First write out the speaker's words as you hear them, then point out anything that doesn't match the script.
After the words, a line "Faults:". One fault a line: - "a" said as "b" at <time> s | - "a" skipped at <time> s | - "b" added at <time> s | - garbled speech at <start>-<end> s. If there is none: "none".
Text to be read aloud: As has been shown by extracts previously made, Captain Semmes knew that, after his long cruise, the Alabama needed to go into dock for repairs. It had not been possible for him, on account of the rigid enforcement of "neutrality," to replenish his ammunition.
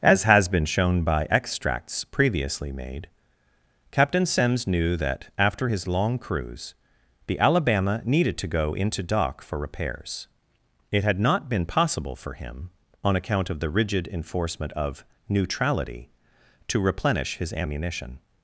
As has been shown by extracts previously made, Captain Semmes knew that, after his long cruise, the Alabama needed to go into dock for repairs. It had not been possible for him, on account of the rigid enforcement of "neutrality," to replenish his ammunition.
Faults:
none